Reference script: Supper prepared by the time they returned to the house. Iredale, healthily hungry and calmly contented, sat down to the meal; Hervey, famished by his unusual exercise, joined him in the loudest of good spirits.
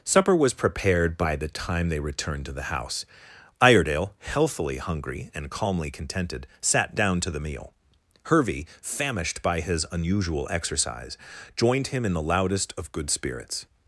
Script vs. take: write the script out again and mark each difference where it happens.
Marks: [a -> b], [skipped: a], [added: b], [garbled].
Supper [added: was] prepared by the time they returned to the house. Iredale, healthily hungry and calmly contented, sat down to the meal; Hervey, famished by his unusual exercise, joined him in the loudest of good spirits.